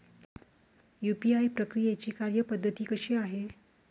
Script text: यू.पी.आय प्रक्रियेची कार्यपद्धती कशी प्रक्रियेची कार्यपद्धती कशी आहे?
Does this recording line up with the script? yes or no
no